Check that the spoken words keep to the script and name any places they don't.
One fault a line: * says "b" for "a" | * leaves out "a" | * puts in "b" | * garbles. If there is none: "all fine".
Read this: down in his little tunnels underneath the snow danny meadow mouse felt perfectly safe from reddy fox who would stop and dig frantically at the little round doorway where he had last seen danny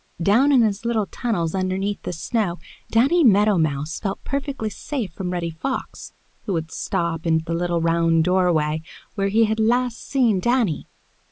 * leaves out "dig frantically at"